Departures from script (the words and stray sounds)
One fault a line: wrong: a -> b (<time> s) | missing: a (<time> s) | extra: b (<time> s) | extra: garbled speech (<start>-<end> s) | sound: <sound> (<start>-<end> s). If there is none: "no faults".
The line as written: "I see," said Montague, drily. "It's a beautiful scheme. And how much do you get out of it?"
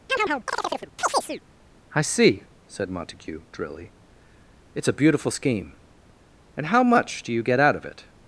sound: chirp (0.1-1.4 s)